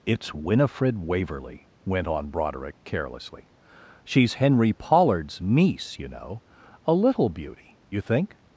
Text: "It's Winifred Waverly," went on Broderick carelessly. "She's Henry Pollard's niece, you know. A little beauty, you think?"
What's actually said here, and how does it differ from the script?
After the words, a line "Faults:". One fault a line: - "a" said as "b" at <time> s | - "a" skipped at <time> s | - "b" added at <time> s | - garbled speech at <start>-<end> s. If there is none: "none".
"It's Winifred Waverly," went on Broderick carelessly. "She's Henry Pollard's niece, you know. A little beauty, you think?"
Faults:
none